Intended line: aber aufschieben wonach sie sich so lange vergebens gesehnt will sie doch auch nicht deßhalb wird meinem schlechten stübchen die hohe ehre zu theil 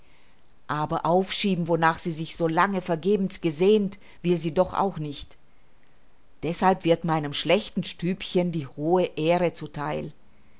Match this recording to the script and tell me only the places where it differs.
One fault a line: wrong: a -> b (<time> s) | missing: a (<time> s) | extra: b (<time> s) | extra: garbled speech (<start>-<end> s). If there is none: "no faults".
no faults